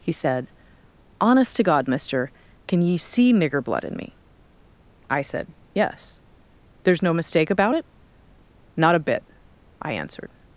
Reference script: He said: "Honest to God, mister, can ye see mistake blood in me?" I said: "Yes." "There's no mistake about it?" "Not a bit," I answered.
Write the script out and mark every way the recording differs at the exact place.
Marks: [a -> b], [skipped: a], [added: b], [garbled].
He said: "Honest to God, mister, can ye see [mistake -> nigger] blood in me?" I said: "Yes." "There's no mistake about it?" "Not a bit," I answered.